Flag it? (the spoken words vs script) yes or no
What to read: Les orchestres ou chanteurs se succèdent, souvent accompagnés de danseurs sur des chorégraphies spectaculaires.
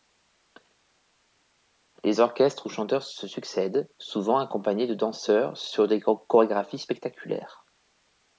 no